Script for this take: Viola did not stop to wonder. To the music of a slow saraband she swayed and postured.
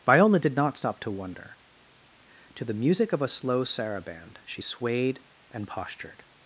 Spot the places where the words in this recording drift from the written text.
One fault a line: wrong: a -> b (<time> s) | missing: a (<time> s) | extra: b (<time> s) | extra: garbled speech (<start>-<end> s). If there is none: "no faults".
no faults